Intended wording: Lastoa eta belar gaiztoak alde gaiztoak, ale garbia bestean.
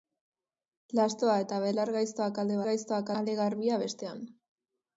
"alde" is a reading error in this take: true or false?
false